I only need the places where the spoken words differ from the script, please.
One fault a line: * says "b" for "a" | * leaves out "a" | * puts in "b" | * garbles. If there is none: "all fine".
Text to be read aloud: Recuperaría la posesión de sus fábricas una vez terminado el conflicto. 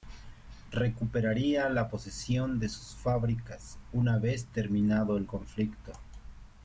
all fine